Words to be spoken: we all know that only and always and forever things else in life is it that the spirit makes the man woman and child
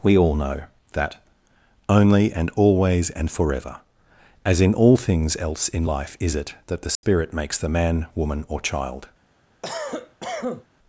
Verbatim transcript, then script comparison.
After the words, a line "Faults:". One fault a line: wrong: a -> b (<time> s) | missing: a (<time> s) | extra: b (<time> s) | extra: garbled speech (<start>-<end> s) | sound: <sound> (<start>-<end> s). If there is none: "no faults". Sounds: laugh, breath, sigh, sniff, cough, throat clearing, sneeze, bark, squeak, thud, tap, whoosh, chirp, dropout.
we all know that only and always and forever as in all things else in life is it that the spirit makes the man woman or child
Faults:
extra: as in all (4.4 s)
sound: dropout (7.0-7.0 s)
wrong: and -> or (8.5 s)
sound: cough (9.6-10.7 s)